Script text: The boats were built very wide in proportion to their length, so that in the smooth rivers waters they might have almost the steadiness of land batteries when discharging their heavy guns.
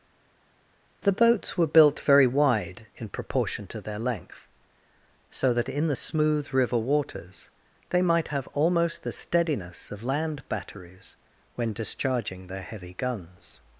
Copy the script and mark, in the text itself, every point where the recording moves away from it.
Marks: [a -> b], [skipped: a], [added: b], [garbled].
The boats were built very wide in proportion to their length, so that in the smooth [rivers -> river] waters they might have almost the steadiness of land batteries when discharging their heavy guns.